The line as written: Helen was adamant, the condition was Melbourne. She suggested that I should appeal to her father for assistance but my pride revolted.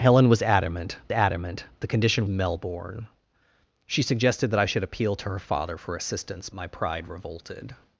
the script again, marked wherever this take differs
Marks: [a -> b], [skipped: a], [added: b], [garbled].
Helen was adamant, [added: adamant] the condition [skipped: was] Melbourne. She suggested that I should appeal to her father for assistance [skipped: but] my pride revolted.